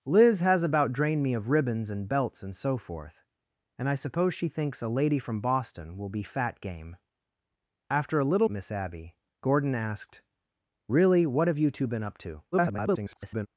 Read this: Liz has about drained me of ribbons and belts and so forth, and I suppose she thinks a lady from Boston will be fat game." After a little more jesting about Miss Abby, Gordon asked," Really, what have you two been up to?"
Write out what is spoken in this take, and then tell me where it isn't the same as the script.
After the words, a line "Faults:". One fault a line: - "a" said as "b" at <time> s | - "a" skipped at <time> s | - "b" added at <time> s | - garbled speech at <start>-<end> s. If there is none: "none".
Liz has about drained me of ribbons and belts and so forth, and I suppose she thinks a lady from Boston will be fat game." After a little Miss Abby, Gordon asked," Really, what have you two been up to?" [garbled]
Faults:
- "more jesting about" skipped at 8.5 s
- garbled speech at 12.5-13.5 s